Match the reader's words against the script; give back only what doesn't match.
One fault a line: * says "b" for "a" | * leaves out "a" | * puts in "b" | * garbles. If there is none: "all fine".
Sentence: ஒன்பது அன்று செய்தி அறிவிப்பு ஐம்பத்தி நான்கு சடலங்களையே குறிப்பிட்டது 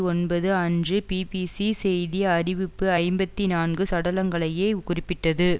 * puts in "பிபிசி"